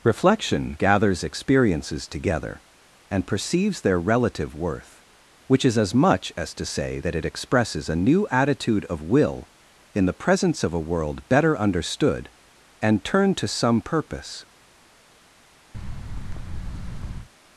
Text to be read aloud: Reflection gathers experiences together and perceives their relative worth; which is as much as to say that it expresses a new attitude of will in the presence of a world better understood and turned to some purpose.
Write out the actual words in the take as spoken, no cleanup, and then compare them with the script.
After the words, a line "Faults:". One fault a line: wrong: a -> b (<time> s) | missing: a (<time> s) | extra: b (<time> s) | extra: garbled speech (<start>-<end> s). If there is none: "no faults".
Reflection gathers experiences together and perceives their relative worth; which is as much as to say that it expresses a new attitude of will in the presence of a world better understood and turned to some purpose.
Faults:
no faults